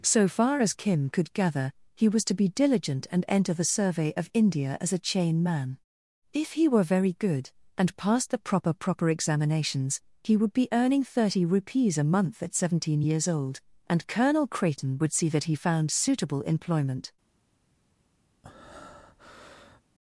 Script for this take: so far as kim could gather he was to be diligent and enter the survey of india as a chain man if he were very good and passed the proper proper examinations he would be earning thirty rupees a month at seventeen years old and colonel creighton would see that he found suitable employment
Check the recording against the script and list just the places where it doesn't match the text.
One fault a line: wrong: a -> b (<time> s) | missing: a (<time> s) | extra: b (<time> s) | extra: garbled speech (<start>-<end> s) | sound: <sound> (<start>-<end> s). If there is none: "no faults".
sound: breath (18.4-19.8 s)